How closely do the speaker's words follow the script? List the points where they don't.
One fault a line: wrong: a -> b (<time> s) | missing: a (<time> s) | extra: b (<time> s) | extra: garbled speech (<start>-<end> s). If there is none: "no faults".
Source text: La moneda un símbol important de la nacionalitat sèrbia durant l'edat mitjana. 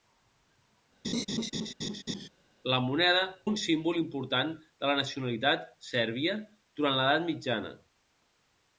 no faults